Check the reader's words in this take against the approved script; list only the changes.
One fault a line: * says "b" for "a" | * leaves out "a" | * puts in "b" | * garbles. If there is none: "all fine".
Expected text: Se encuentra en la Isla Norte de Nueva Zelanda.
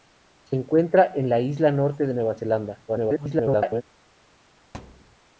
* garbles